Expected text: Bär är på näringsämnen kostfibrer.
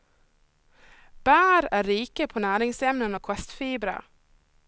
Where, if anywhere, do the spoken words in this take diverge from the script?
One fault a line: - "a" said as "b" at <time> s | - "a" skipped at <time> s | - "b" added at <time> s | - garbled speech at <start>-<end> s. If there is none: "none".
- "rika" added at 1.8 s
- "och" added at 3.1 s